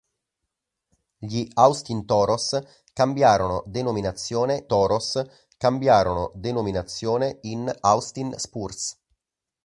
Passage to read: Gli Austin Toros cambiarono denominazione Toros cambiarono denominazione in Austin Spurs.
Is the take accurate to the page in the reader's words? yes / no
yes